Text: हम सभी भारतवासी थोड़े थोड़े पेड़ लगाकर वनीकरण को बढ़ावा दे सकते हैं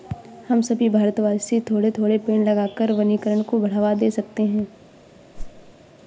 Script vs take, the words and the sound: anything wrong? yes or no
yes